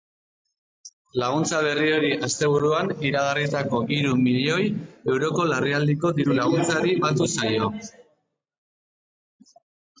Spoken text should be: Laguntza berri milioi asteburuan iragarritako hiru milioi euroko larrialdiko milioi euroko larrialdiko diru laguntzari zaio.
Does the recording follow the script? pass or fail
fail